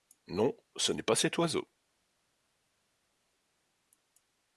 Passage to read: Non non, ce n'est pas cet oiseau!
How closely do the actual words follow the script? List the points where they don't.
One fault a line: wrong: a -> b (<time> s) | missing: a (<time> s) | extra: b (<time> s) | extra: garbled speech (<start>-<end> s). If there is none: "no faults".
missing: non (0.6 s)